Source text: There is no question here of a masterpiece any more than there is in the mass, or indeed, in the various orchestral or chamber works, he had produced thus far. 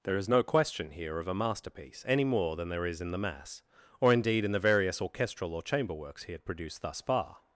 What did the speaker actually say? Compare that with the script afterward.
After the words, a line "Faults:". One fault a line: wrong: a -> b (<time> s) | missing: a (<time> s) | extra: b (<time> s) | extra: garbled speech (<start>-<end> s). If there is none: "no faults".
There is no question here of a masterpiece any more than there is in the mass, or indeed, in the various orchestral or chamber works, he had produced thus far.
Faults:
no faults